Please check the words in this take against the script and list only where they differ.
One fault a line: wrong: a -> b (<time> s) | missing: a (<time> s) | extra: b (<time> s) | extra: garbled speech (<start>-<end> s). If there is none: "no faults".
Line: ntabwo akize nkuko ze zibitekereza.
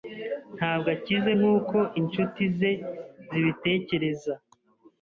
extra: inshuti (2.0 s)